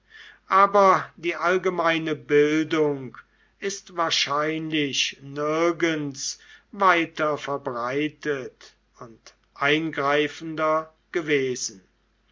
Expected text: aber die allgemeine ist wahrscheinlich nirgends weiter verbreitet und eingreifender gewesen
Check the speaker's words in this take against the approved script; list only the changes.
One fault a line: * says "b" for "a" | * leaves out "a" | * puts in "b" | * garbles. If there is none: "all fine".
* puts in "bildung"